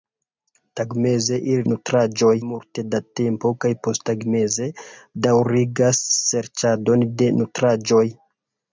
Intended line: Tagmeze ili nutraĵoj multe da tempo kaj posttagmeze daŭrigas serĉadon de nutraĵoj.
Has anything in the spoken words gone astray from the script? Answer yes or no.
no